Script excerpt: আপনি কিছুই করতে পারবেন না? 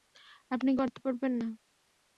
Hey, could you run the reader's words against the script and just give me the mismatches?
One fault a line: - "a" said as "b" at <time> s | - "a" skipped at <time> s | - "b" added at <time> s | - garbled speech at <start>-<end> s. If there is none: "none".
- "কিছুই" skipped at 0.7 s